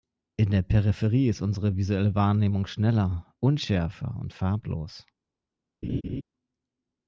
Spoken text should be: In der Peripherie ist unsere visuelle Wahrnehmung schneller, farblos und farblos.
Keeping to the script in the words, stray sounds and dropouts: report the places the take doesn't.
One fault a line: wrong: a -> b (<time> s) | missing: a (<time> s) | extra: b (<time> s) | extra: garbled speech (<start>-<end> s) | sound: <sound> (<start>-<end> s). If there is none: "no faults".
wrong: farblos -> unschärfer (3.4 s)
sound: laugh (5.8-6.2 s)